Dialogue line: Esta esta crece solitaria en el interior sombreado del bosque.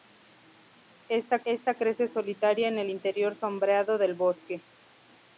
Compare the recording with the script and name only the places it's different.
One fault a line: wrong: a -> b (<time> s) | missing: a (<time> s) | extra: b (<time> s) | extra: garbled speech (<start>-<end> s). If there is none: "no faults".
no faults